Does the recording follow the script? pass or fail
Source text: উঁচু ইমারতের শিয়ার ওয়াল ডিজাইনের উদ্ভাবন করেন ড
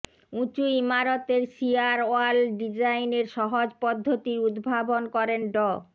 fail